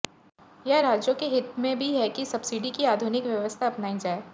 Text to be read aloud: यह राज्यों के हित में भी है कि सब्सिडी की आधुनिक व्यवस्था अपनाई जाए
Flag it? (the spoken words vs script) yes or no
no